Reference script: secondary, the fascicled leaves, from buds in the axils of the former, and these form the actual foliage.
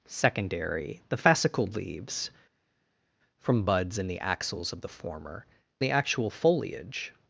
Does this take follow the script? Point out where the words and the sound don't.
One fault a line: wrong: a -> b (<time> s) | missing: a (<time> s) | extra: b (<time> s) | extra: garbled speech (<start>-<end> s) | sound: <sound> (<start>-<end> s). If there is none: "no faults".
missing: and these form (5.5 s)